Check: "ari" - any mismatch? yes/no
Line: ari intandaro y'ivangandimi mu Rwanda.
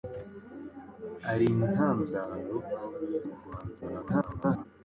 no